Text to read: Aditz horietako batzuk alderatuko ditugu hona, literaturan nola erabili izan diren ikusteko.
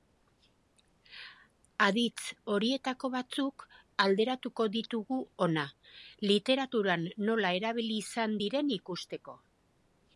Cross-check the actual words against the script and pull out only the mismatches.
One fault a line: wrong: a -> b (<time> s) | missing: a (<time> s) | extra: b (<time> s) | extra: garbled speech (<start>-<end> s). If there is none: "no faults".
no faults